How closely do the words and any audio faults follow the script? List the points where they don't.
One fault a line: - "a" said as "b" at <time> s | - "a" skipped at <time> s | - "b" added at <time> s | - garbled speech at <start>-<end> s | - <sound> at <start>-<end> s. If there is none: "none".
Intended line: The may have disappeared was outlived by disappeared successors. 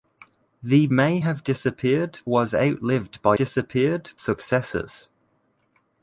none